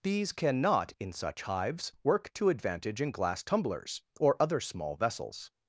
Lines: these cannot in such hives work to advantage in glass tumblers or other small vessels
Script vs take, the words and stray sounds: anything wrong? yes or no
no